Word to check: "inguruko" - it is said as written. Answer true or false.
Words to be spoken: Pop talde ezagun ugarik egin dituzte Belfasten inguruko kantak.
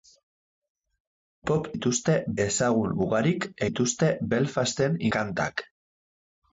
false